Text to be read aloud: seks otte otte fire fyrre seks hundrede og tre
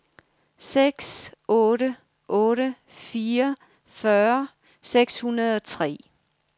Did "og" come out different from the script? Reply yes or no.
no